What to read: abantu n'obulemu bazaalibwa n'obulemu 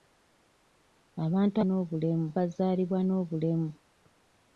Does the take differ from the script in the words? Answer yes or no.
no